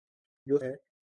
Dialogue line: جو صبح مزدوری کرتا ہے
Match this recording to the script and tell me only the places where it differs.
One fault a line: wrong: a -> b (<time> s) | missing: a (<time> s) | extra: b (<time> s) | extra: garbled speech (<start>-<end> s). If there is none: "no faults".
missing: صبح مزدوری کرتا (0.6 s)